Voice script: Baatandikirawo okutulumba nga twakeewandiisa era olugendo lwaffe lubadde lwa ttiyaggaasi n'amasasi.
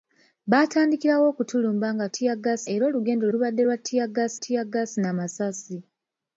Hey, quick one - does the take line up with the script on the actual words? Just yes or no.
no